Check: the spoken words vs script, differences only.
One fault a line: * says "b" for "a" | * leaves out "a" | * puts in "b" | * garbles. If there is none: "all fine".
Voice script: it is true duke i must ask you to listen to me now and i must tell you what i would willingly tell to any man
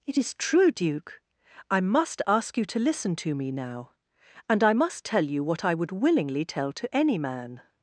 all fine